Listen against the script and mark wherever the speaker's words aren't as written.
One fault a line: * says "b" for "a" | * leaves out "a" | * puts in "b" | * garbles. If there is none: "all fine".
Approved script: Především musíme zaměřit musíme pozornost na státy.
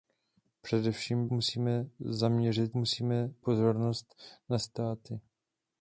all fine